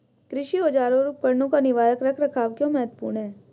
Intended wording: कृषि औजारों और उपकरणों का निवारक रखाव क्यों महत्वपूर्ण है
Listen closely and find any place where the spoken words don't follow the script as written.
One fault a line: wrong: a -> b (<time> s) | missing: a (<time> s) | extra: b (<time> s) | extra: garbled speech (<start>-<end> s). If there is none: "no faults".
extra: रख (2.0 s)